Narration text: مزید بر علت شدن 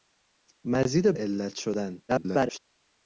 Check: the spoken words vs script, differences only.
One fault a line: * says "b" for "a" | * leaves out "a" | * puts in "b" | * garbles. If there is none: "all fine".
* leaves out "بر"
* garbles